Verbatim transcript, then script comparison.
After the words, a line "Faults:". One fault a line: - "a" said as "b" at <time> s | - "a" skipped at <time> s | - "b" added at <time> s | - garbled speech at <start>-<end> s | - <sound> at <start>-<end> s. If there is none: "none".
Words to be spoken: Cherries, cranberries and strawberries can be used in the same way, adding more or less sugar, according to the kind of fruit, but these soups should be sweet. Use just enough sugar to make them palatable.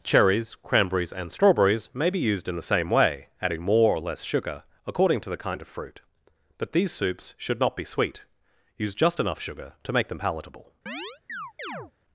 Cherries, cranberries and strawberries may be used in the same way, adding more or less sugar, according to the kind of fruit, but these soups should not be sweet. Use just enough sugar to make them palatable.
Faults:
- "can" said as "may" at 1.9 s
- "not" added at 7.6 s
- chirp at 10.9-11.9 s